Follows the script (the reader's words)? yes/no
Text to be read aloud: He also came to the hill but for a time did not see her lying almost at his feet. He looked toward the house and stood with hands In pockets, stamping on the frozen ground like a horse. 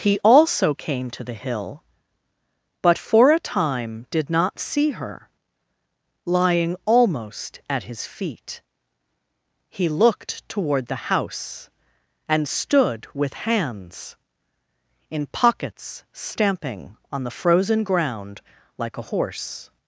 yes